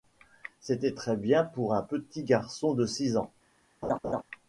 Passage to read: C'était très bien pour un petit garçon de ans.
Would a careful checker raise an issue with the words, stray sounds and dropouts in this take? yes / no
yes